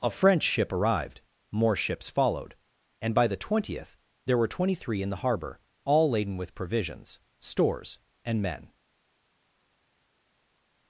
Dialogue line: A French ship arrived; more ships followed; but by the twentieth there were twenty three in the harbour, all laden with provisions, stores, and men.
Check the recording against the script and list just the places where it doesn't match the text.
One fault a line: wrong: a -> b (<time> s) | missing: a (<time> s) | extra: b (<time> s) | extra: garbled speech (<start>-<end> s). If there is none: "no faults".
wrong: but -> and (3.0 s)